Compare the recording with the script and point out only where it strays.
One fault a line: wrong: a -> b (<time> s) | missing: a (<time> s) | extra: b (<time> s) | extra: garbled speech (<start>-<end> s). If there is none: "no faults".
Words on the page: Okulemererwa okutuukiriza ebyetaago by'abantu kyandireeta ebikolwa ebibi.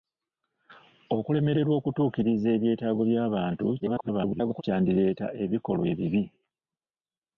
extra: garbled speech (3.8-4.6 s)